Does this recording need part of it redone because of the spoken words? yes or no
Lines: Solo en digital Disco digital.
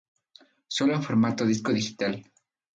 yes